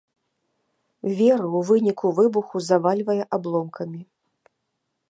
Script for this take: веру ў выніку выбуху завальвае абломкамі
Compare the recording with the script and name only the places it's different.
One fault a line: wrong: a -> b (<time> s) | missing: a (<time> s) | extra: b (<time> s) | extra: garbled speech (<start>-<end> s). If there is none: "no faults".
no faults